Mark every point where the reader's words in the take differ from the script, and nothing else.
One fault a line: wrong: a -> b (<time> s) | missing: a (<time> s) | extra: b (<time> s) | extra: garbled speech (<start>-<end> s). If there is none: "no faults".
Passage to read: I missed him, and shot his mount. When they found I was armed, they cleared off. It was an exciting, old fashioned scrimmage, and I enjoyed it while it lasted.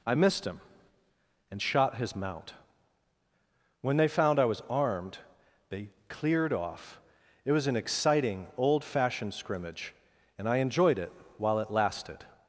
no faults